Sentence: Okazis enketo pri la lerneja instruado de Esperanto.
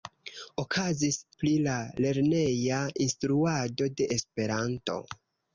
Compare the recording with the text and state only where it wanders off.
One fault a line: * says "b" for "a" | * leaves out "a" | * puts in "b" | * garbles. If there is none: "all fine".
* leaves out "enketo"